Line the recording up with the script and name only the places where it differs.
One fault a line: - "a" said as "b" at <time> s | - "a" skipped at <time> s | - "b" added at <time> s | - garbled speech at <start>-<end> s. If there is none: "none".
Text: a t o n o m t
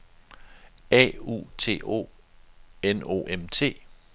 - "u" added at 1.3 s